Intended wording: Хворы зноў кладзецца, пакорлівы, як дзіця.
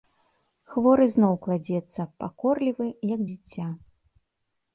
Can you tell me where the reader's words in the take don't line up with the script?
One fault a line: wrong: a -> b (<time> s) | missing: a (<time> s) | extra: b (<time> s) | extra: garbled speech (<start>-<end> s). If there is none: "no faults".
no faults